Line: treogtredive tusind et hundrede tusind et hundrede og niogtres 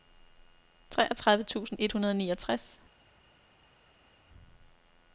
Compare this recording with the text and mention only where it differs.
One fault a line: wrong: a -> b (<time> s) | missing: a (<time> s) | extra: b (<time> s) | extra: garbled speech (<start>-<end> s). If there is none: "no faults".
missing: tusind et hundrede (2.1 s)